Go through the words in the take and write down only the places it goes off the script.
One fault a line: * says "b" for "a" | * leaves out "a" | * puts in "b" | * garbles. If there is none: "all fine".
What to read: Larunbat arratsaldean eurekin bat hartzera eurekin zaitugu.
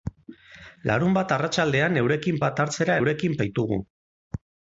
all fine